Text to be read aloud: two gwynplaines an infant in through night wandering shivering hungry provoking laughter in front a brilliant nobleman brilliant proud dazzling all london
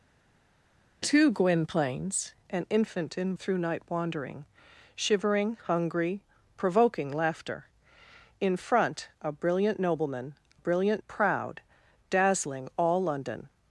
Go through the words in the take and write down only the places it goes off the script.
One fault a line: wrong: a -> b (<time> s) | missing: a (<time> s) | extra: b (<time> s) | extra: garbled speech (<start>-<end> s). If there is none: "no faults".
no faults